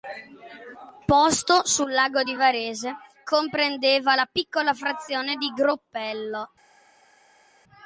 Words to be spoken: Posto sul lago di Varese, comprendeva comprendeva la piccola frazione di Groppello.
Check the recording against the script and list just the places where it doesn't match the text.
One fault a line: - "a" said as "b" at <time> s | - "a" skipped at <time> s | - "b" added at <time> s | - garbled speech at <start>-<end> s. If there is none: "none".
- "comprendeva" skipped at 4.1 s